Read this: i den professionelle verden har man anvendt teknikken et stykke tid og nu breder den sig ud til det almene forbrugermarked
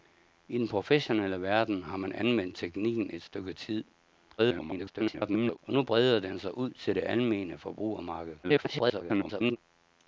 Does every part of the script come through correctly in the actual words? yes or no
no